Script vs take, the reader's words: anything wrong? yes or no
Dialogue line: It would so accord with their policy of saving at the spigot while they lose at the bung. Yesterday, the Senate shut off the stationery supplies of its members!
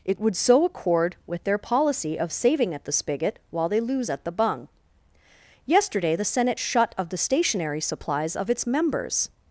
yes